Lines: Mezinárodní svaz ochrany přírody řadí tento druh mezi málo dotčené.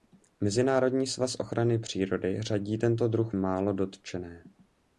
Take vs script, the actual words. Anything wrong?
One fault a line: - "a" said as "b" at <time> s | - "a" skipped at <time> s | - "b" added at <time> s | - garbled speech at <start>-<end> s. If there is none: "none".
- "mezi" skipped at 3.3 s